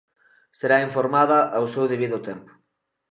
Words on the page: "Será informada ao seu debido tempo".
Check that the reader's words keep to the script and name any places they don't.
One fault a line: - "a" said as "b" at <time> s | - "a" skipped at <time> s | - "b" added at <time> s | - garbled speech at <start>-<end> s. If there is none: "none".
none